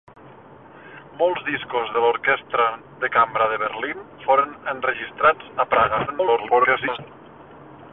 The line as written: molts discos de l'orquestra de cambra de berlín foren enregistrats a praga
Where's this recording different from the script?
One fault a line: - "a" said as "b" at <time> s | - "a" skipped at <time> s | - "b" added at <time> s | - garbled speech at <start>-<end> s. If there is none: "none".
- garbled speech at 6.1-7.0 s